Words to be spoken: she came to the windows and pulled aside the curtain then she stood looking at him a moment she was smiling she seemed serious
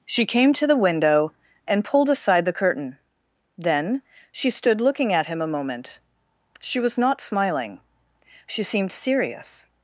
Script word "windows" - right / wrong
wrong